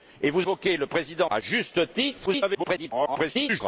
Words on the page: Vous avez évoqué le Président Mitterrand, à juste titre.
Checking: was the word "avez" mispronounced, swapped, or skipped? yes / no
yes